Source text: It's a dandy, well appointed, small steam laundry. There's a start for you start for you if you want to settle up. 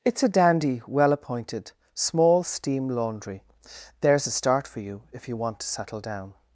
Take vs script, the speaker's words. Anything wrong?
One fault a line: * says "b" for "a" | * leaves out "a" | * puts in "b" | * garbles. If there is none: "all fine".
* leaves out "start for you"
* says "down" for "up"